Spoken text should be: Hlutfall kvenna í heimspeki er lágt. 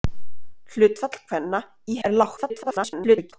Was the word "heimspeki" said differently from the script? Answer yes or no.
yes